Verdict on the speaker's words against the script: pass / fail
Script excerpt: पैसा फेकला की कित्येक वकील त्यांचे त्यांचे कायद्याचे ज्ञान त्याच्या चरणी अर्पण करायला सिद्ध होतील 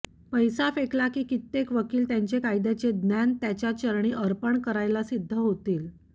fail